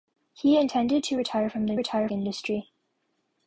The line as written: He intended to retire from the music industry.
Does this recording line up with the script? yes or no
no